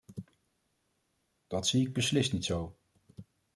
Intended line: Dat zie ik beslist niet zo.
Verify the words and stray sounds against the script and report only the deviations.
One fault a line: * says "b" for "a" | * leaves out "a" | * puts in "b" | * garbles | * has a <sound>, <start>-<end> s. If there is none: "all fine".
all fine